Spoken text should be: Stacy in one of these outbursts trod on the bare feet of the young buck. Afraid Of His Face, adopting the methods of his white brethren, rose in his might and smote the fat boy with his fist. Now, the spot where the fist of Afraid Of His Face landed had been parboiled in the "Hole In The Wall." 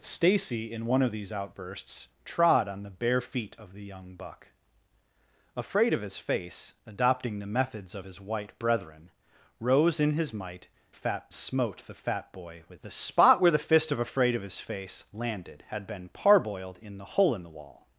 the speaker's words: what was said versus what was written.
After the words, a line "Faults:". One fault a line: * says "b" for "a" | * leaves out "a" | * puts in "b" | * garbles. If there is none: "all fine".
Stacy in one of these outbursts trod on the bare feet of the young buck. Afraid Of His Face, adopting the methods of his white brethren, rose in his might fat smote the fat boy with the spot where the fist of Afraid Of His Face landed had been parboiled in the "Hole In The Wall."
Faults:
* says "fat" for "and"
* leaves out "his fist Now"